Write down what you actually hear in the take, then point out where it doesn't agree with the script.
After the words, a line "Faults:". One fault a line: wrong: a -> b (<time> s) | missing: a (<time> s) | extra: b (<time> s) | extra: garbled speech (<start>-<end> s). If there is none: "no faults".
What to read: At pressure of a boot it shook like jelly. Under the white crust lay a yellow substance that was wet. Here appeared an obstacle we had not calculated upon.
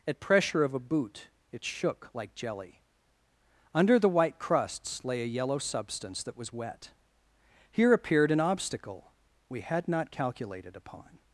At pressure of a boot it shook like jelly. Under the white crusts lay a yellow substance that was wet. Here appeared an obstacle we had not calculated upon.
Faults:
wrong: crust -> crusts (4.4 s)